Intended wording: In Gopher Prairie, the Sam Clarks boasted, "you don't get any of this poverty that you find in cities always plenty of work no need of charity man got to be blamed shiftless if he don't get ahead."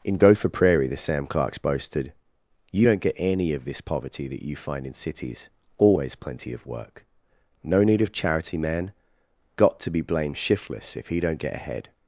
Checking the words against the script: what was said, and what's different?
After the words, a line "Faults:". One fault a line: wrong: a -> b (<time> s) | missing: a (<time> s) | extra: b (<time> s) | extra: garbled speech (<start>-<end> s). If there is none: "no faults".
In Gopher Prairie, the Sam Clarks boasted, "you don't get any of this poverty that you find in cities always plenty of work no need of charity man got to be blamed shiftless if he don't get ahead."
Faults:
no faults